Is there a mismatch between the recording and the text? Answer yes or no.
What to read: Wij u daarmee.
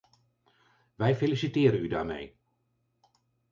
yes